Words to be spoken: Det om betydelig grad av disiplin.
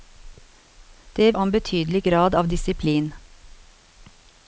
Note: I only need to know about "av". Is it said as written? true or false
true